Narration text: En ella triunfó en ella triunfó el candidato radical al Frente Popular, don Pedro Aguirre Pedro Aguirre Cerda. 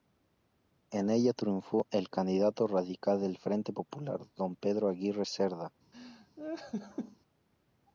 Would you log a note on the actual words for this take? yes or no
yes